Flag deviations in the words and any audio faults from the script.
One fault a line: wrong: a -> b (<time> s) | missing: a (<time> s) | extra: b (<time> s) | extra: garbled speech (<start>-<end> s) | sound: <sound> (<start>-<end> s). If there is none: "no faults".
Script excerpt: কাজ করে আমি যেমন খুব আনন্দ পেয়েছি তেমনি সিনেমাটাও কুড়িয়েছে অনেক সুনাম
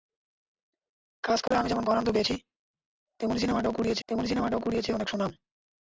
sound: dropout (1.5-1.5 s)
missing: খুব (1.8 s)
extra: তেমনি সিনেমাটাও কুড়িয়েছে (4.1 s)